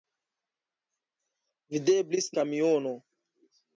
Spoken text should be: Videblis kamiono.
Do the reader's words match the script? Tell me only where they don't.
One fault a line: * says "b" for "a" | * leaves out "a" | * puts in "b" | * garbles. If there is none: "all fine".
all fine